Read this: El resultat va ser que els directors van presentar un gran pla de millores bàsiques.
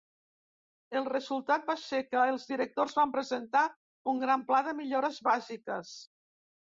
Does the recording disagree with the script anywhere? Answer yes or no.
no